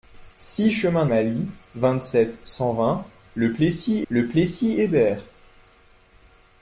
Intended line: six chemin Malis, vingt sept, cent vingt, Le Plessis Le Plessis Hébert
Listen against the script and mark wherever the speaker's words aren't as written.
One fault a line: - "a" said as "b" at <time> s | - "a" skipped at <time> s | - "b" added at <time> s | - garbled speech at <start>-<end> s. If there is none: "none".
none